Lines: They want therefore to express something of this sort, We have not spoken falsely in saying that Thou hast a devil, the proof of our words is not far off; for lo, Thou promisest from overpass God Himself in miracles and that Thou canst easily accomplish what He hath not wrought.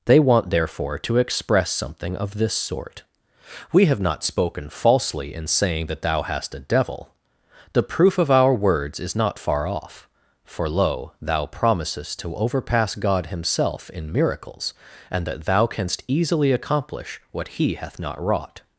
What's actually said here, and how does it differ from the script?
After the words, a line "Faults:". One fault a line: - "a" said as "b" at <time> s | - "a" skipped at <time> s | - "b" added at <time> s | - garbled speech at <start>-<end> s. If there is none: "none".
They want therefore to express something of this sort, We have not spoken falsely in saying that Thou hast a devil, the proof of our words is not far off; for lo, Thou promisest to overpass God Himself in miracles and that Thou canst easily accomplish what He hath not wrought.
Faults:
- "from" said as "to" at 12.2 s